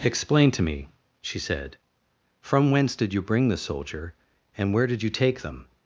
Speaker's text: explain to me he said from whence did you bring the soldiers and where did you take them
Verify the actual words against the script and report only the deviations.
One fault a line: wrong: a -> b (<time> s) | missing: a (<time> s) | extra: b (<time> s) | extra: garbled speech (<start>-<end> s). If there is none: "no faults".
wrong: he -> she (1.2 s)
wrong: soldiers -> soldier (3.6 s)